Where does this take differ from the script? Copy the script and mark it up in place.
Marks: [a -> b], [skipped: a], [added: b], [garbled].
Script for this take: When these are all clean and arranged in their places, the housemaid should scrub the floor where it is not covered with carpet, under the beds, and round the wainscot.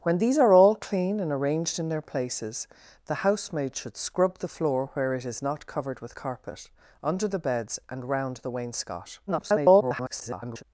When these are all clean and arranged in their places, the housemaid should scrub the floor where it is not covered with carpet, under the beds, and round the wainscot. [garbled]